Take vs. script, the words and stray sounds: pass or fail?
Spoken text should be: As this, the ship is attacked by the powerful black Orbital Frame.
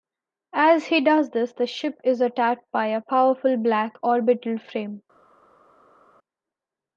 fail